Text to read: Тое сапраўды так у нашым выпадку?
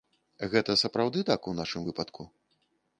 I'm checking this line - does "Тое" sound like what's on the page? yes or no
no